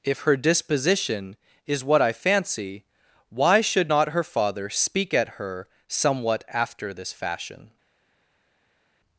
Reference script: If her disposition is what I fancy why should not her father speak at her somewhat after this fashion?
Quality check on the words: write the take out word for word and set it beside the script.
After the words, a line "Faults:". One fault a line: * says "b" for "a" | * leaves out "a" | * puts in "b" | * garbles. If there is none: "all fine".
If her disposition is what I fancy why should not her father speak at her somewhat after this fashion?
Faults:
all fine